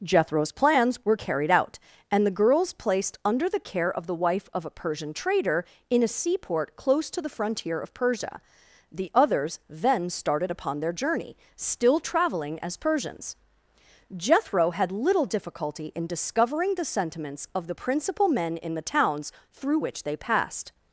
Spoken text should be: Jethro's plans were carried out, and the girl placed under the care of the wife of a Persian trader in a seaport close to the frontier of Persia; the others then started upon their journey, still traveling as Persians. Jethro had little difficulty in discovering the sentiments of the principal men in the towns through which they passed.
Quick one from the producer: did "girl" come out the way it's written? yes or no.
no